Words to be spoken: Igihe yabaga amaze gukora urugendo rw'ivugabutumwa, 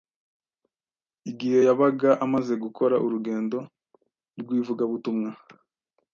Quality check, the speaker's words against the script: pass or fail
pass